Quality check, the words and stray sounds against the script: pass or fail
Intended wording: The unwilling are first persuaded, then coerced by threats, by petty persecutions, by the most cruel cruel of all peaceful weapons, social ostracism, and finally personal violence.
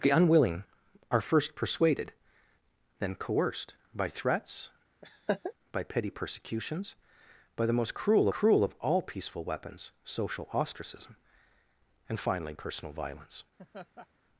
fail